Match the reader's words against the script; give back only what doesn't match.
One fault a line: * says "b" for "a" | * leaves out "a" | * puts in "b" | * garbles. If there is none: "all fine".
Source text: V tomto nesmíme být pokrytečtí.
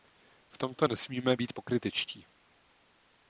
all fine